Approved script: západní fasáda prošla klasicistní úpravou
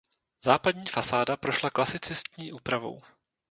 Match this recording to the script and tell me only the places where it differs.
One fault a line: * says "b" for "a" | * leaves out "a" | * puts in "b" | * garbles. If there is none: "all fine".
all fine